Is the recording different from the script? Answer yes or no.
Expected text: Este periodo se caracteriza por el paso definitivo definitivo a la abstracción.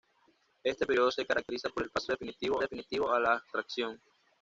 no